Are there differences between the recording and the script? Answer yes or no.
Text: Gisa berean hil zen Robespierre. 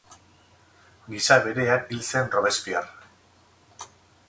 no